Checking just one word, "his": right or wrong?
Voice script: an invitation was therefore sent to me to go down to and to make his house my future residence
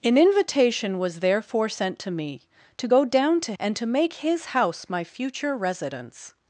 right